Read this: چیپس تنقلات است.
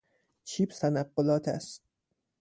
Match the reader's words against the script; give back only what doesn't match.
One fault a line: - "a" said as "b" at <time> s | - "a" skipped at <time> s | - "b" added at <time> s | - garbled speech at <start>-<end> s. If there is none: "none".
none